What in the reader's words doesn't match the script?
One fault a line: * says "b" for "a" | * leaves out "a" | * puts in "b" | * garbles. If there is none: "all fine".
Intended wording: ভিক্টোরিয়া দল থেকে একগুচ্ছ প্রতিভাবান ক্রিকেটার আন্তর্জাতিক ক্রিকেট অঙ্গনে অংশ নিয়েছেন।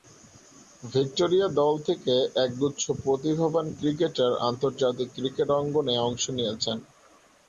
all fine